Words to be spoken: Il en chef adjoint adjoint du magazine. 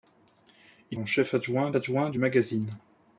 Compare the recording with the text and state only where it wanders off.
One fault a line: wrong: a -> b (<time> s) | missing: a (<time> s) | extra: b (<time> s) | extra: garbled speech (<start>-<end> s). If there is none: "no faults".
no faults